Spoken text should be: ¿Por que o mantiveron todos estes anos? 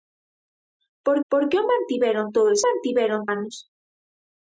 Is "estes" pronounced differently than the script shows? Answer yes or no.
yes